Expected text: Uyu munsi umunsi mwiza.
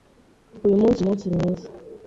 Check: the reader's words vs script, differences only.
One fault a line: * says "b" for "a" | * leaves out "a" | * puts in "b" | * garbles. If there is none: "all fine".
all fine